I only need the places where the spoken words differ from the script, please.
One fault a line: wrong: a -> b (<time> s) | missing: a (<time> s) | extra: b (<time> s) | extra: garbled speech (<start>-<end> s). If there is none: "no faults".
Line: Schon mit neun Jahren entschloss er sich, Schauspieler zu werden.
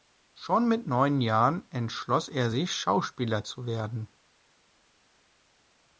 no faults